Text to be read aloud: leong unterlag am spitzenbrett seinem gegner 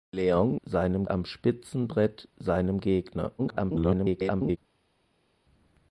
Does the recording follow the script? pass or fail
fail